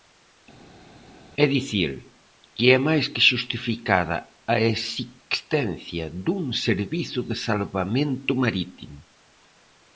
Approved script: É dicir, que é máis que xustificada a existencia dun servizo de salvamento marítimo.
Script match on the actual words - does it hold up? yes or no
yes